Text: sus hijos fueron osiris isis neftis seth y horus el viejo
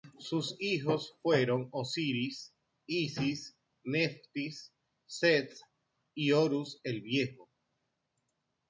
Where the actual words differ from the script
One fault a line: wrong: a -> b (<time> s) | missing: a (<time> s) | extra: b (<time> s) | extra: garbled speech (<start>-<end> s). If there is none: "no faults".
no faults